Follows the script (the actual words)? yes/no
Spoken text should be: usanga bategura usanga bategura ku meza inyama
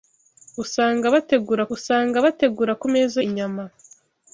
yes